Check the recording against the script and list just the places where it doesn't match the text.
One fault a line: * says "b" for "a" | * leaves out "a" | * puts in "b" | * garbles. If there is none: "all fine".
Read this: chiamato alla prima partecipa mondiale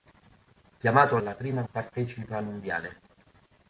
all fine